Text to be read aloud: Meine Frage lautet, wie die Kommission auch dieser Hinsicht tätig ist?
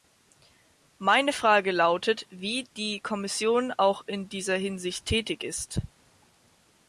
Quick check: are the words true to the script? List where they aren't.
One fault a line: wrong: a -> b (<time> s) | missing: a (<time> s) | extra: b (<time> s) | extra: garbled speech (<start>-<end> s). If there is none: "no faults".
extra: in (4.1 s)